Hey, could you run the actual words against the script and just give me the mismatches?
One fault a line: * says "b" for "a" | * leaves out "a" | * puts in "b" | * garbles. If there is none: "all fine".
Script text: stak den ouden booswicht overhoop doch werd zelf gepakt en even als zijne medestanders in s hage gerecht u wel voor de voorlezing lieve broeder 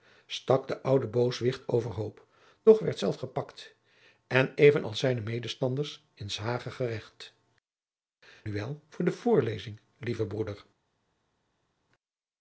all fine